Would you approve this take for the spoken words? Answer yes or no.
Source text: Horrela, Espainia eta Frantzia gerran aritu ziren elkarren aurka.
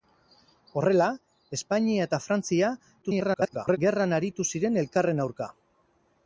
no